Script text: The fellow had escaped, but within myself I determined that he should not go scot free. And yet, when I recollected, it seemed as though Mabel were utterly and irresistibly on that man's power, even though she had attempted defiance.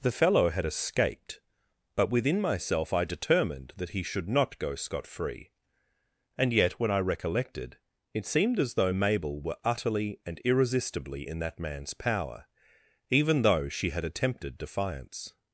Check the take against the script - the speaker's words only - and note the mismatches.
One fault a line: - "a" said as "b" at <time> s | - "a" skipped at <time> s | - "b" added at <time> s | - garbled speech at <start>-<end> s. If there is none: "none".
- "on" said as "in" at 11.2 s